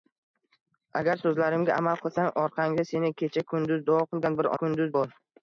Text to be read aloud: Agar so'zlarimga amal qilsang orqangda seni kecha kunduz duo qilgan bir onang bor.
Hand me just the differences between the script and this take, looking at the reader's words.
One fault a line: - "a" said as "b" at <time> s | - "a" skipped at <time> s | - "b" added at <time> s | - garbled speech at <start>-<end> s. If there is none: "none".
- "onang" said as "kunduz" at 4.6 s